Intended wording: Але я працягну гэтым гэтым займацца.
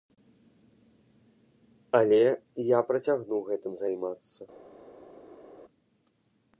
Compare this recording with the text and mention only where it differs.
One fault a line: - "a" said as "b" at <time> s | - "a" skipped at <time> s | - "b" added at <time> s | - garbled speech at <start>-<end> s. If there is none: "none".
- "гэтым" skipped at 3.7 s